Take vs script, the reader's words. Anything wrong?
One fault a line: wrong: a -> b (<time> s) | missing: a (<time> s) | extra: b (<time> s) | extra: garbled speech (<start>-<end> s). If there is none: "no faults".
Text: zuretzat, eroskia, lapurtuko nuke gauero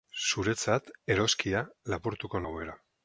missing: nuke (2.4 s)